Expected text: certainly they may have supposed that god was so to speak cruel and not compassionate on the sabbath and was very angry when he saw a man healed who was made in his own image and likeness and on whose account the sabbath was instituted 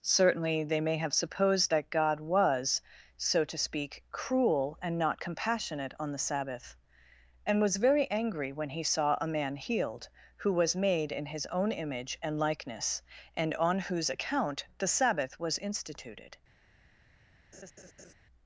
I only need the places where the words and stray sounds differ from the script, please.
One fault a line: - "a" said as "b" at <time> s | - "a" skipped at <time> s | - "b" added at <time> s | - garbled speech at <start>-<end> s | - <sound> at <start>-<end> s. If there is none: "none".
- laugh at 17.5-18.1 s